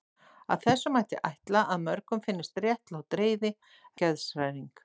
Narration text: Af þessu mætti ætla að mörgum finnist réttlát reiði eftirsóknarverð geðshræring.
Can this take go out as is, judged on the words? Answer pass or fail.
fail